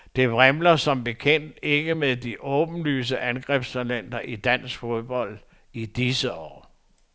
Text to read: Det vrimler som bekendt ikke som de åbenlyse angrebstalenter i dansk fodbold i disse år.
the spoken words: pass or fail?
fail